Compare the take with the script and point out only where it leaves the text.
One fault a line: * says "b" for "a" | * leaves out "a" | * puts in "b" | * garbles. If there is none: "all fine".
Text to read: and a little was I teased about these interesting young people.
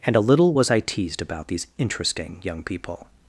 all fine